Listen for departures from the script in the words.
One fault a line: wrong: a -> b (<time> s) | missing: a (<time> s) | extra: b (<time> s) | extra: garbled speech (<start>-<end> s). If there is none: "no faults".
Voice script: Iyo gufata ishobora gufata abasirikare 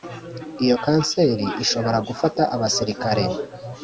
wrong: gufata -> kanseri (0.8 s)